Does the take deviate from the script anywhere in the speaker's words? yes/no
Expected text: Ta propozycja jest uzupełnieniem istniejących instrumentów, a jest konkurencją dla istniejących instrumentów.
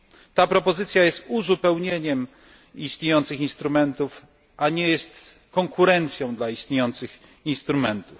yes